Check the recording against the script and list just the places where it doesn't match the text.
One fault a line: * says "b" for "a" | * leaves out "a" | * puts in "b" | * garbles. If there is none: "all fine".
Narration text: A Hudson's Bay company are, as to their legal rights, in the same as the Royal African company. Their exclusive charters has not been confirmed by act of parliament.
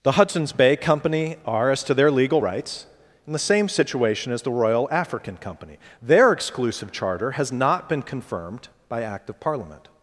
* says "The" for "A"
* puts in "situation"
* says "charter" for "charters"